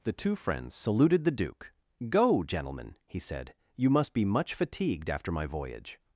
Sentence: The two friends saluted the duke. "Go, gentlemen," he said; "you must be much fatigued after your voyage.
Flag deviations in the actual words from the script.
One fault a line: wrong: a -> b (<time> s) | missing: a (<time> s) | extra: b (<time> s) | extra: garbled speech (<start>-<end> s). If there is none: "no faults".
wrong: your -> my (5.3 s)